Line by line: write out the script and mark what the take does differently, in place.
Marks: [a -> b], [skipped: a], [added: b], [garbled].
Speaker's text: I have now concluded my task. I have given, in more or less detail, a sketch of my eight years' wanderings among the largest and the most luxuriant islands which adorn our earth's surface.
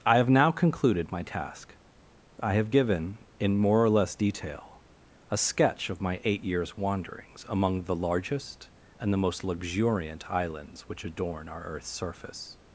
I have now concluded my task. I have given, in more or less detail, a sketch of my eight years' wanderings among the largest and the most luxuriant islands which adorn our earth's surface.